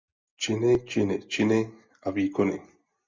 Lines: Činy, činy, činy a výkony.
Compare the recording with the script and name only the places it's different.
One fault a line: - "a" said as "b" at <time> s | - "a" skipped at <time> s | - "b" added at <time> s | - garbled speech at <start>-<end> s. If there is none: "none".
none